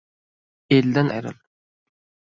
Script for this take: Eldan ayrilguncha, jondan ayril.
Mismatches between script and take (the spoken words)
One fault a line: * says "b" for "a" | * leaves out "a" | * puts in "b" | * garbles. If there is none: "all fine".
* leaves out "ayrilguncha jondan"